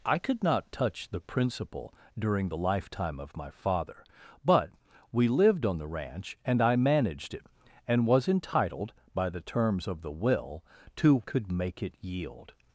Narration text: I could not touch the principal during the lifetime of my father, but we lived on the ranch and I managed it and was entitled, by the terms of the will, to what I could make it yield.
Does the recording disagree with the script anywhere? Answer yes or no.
yes